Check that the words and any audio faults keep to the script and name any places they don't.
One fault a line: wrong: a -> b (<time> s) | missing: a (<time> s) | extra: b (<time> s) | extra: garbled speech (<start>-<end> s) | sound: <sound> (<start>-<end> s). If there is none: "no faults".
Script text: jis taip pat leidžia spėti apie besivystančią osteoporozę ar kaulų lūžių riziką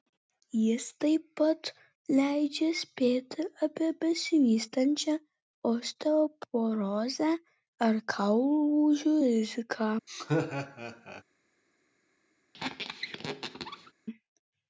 sound: laugh (10.1-11.2 s)
sound: squeak (12.5-13.9 s)